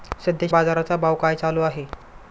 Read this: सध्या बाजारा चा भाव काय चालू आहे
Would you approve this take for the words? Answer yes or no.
yes